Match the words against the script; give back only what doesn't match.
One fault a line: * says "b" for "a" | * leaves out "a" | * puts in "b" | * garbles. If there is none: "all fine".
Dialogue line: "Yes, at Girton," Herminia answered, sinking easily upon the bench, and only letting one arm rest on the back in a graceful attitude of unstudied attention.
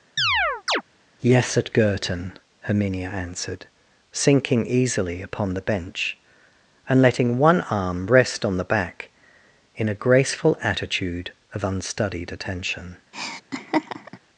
* leaves out "only"